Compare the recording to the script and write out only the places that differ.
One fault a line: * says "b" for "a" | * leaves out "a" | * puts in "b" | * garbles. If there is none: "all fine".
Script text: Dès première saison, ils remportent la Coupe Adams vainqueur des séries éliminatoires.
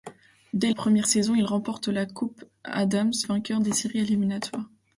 all fine